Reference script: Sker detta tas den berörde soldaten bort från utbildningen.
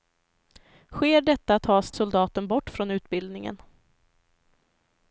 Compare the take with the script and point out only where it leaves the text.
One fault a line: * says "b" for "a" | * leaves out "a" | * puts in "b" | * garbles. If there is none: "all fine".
* leaves out "den berörde"